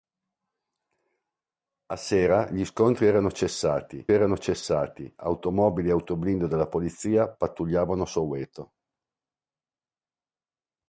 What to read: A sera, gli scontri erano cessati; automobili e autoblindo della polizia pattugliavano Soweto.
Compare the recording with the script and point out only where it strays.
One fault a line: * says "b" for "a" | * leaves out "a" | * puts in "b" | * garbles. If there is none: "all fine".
* puts in "erano cessati"